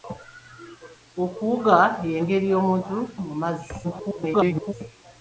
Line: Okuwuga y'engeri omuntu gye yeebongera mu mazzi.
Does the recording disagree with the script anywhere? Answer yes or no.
yes